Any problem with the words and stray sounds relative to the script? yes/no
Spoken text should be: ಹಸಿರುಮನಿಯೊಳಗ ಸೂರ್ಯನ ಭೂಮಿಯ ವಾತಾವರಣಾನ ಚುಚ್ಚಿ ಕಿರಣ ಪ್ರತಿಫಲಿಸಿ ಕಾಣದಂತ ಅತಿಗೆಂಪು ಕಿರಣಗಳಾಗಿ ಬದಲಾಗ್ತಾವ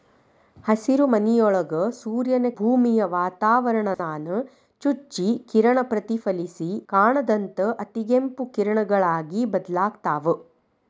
yes